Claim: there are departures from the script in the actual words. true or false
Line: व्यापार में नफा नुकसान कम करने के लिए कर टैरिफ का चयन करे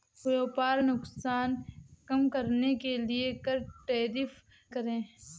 true